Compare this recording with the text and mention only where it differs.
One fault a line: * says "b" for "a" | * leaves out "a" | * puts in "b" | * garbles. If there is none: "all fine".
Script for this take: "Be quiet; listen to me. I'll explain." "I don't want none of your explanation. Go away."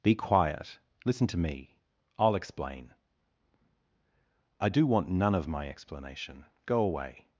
* says "do" for "don't"
* says "my" for "your"